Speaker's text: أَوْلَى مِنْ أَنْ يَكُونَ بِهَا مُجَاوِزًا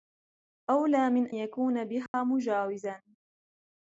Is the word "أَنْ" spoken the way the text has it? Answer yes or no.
no